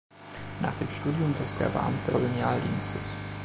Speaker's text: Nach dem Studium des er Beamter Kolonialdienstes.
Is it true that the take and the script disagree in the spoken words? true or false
false